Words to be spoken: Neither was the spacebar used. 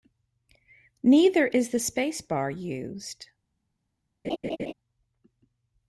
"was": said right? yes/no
no